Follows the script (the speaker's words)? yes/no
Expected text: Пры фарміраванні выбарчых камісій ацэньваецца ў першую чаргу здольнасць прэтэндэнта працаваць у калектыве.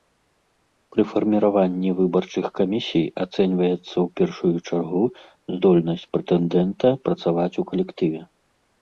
yes